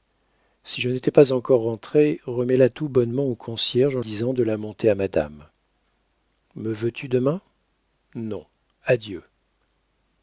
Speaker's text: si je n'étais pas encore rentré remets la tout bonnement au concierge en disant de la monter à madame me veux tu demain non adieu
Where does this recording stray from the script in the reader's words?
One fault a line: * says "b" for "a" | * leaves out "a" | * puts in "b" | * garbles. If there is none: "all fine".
all fine